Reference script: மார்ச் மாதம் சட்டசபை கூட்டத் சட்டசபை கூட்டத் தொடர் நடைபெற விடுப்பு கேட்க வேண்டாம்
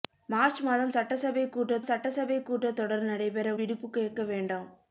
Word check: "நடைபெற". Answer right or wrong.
right